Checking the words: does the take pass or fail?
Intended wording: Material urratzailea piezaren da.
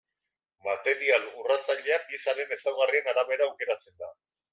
fail